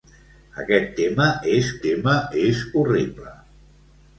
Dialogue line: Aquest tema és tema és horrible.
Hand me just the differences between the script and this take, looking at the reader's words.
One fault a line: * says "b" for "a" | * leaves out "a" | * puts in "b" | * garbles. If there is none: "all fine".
all fine